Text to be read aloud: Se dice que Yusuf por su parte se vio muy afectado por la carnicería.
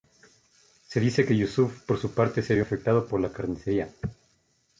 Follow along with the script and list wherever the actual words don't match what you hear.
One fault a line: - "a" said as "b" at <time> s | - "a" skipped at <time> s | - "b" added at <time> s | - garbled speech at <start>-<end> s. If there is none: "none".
- "muy" skipped at 2.6 s